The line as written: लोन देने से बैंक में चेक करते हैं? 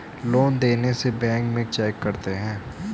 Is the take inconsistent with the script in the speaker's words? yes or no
no